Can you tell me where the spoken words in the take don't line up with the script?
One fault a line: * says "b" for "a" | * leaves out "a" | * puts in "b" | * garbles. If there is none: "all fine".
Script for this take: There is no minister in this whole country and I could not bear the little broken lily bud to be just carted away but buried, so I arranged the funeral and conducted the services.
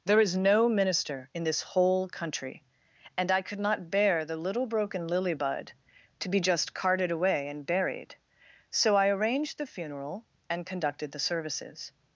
* says "and" for "but"